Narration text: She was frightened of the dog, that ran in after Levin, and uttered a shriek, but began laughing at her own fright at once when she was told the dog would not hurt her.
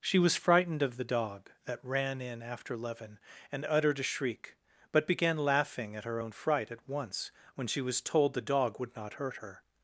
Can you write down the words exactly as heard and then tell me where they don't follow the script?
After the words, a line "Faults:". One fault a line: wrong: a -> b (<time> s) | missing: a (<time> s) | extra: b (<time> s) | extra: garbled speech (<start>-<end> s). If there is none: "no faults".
She was frightened of the dog, that ran in after Levin, and uttered a shriek, but began laughing at her own fright at once when she was told the dog would not hurt her.
Faults:
no faults